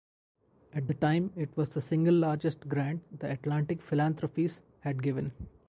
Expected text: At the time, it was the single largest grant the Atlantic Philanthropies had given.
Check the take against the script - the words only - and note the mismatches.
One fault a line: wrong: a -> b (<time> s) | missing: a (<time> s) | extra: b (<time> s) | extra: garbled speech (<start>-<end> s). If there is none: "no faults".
no faults